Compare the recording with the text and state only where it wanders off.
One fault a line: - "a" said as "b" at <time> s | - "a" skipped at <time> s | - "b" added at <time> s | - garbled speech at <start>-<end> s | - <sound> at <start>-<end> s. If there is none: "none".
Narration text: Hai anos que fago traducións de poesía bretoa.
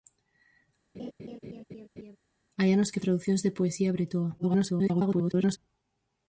- laugh at 0.9-2.2 s
- "fago" skipped at 3.0 s
- garbled speech at 4.4-5.6 s